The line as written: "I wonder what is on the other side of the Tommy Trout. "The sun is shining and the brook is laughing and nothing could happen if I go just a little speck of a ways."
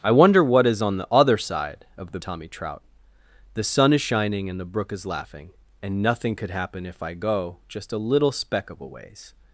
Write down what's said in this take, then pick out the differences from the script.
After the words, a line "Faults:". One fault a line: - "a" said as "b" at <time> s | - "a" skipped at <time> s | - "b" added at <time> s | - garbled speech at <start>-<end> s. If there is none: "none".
"I wonder what is on the other side of the Tommy Trout. "The sun is shining and the brook is laughing and nothing could happen if I go just a little speck of a ways."
Faults:
none